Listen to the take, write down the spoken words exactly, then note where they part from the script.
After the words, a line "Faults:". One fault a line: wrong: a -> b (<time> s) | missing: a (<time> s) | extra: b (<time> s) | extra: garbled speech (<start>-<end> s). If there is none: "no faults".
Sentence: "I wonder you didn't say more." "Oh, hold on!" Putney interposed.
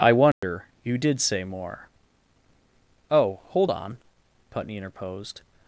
"I wonder you did say more." "Oh, hold on!" Putney interposed.
Faults:
wrong: didn't -> did (1.0 s)